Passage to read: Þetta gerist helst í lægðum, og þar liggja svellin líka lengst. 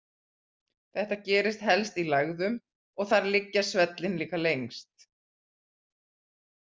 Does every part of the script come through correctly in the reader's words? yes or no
yes